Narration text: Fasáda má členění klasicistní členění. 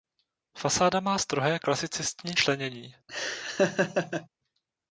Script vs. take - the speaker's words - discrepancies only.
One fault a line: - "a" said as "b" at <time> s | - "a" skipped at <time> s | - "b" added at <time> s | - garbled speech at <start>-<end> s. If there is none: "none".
- "členění" said as "strohé" at 1.2 s